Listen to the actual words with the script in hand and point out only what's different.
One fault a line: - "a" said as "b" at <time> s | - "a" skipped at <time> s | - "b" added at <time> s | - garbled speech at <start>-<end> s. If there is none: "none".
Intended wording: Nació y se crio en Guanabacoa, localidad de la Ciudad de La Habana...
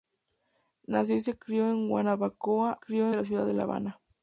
- "localidad" said as "crio" at 2.8 s